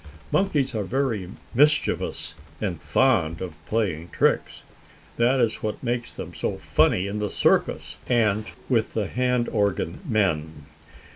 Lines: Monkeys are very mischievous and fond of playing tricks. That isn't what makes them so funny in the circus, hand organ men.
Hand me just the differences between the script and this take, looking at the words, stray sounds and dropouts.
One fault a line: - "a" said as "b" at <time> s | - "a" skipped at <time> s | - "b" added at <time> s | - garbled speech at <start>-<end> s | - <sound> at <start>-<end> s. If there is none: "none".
- "isn't" said as "is" at 5.4 s
- "and with the" added at 8.1 s